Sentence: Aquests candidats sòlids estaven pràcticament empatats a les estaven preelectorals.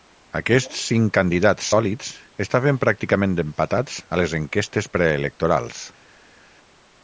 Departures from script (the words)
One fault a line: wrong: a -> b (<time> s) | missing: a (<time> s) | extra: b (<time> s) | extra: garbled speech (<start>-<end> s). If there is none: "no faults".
extra: cinc (0.9 s)
wrong: estaven -> enquestes (4.4 s)